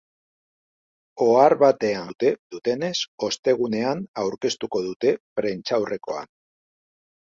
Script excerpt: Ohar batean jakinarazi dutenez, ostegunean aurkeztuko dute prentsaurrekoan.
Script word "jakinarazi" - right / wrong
wrong